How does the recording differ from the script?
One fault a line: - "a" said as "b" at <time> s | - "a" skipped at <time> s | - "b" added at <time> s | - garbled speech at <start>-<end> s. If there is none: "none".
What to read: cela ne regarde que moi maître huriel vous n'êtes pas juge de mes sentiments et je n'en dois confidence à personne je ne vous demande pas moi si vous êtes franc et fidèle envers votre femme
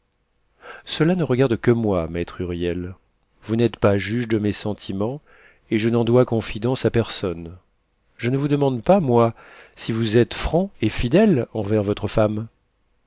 none